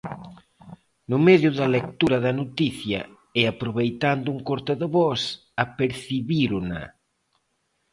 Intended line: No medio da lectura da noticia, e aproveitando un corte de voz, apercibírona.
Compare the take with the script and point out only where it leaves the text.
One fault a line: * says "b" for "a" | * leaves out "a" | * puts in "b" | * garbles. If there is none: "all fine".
all fine